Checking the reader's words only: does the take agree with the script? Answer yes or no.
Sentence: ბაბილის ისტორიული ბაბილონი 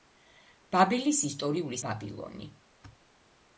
yes